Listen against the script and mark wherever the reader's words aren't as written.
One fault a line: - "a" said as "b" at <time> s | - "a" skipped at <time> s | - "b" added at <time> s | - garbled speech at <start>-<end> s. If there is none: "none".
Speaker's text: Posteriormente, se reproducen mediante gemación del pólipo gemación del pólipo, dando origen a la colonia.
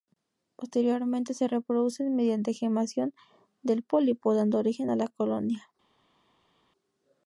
- "gemación del pólipo" skipped at 4.3 s